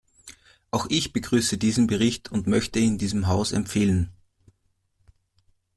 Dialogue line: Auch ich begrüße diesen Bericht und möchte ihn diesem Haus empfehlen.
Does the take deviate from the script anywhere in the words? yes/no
no